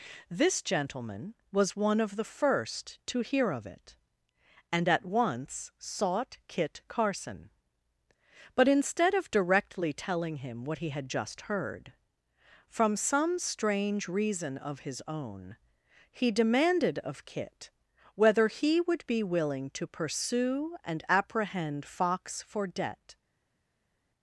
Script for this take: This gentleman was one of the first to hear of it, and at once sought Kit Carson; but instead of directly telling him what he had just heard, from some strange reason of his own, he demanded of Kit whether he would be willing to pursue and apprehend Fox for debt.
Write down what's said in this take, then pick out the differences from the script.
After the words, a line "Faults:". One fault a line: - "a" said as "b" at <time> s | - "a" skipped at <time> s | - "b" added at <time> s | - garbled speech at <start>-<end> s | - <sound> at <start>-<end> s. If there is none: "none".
This gentleman was one of the first to hear of it, and at once sought Kit Carson; but instead of directly telling him what he had just heard, from some strange reason of his own, he demanded of Kit whether he would be willing to pursue and apprehend Fox for debt.
Faults:
none